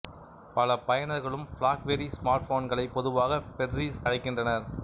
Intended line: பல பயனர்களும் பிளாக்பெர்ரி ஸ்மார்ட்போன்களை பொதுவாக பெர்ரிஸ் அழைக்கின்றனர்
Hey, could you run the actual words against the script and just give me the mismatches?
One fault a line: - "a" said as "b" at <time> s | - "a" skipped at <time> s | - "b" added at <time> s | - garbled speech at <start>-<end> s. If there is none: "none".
none